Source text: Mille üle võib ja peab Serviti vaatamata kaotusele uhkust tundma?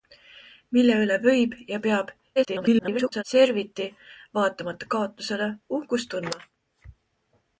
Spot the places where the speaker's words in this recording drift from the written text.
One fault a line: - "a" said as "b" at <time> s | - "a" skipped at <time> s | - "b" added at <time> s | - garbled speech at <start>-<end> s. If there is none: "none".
- garbled speech at 2.4-3.2 s